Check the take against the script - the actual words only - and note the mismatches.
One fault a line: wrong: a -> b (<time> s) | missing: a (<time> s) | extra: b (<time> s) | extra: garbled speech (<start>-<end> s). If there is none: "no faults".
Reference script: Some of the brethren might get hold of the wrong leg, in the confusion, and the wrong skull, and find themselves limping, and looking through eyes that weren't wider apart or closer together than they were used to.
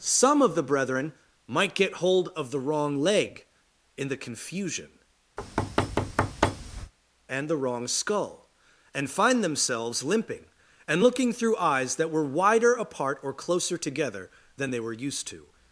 wrong: weren't -> were (12.1 s)